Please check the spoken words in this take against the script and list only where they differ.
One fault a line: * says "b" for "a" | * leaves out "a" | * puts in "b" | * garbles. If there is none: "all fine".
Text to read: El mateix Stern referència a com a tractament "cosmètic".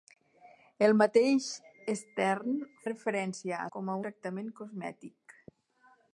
all fine